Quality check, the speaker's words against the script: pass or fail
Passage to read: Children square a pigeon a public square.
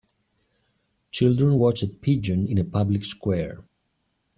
fail